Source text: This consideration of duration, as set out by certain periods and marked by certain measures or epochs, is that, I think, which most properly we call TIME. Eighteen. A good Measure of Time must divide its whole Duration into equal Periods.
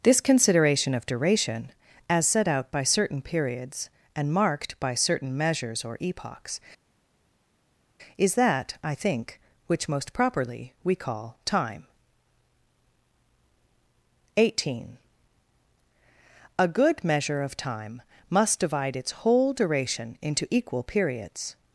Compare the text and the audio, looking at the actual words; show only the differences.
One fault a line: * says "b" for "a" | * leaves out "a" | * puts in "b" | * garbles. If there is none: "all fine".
all fine